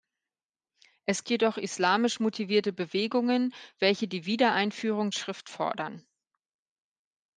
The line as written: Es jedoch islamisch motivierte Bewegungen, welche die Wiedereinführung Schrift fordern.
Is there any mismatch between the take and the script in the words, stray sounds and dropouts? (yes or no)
no